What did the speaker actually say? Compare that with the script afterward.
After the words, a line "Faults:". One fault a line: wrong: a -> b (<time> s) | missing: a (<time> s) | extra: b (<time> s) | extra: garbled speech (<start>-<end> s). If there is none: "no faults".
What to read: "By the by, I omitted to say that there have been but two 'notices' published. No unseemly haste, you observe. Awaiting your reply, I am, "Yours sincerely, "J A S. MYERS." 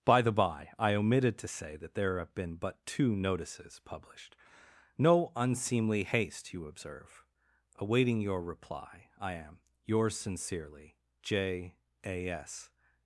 "By the by, I omitted to say that there have been but two 'notices' published. No unseemly haste, you observe. Awaiting your reply, I am, "Yours sincerely, "J A S."
Faults:
missing: MYERS (12.7 s)